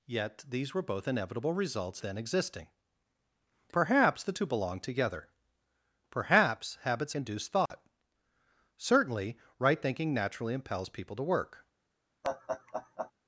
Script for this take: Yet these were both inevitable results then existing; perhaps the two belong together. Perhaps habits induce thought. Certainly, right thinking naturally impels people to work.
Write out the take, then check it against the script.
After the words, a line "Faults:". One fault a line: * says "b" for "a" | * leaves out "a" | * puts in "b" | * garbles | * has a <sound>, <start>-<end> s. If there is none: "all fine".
Yet these were both inevitable results then existing; perhaps the two belong together. Perhaps habits induce thought. Certainly, right thinking naturally impels people to work.
Faults:
* has a dropout, 7.7-7.7 s
* has a laugh, 12.2-13.1 s